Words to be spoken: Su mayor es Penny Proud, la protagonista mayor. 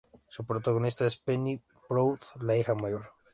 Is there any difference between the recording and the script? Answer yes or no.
yes